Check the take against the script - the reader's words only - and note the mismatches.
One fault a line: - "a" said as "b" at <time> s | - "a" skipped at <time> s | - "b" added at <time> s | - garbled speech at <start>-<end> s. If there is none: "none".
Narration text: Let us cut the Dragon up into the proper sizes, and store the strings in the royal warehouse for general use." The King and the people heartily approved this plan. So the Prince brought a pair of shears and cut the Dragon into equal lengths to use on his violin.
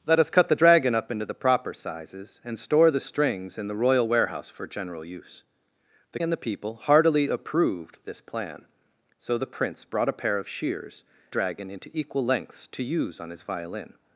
- "King" skipped at 6.2 s
- "and cut the" skipped at 11.0 s